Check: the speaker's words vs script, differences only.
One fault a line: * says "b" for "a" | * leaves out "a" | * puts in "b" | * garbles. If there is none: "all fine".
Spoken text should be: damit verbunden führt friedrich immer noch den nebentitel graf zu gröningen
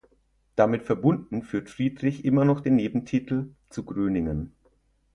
* leaves out "graf"